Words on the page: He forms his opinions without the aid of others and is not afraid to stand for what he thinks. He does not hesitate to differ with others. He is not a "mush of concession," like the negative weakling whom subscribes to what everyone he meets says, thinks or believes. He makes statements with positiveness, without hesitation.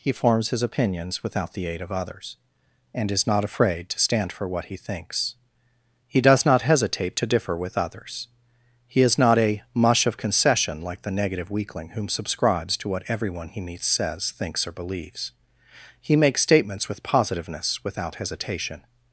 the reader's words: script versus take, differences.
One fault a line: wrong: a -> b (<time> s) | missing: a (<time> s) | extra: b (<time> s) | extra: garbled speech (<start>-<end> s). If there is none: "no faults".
no faults